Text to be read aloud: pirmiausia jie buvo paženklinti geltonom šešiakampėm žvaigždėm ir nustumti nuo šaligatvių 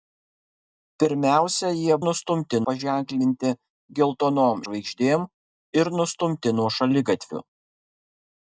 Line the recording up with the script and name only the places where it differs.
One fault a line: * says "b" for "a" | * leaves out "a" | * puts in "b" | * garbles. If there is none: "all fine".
* says "nustumti" for "buvo"
* leaves out "šešiakampėm"